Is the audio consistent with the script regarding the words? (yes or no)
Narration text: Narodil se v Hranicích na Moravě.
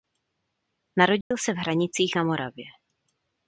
yes